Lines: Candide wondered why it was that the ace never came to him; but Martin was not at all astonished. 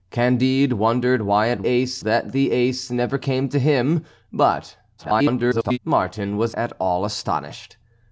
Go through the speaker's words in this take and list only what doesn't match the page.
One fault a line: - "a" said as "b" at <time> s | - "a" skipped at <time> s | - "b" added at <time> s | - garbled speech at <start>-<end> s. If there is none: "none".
- "was" said as "ace" at 1.7 s
- garbled speech at 5.0-5.8 s
- "not" skipped at 6.6 s